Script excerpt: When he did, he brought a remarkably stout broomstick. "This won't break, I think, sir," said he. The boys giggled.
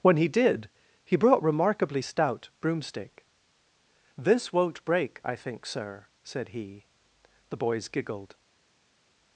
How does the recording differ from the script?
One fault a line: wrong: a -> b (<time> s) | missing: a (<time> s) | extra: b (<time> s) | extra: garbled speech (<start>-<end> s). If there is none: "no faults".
missing: a (1.4 s)